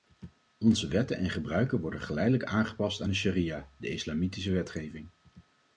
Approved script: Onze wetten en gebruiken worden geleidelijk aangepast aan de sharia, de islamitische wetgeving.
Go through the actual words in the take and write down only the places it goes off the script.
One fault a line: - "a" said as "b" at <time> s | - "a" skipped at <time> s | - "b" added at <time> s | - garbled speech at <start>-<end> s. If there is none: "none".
none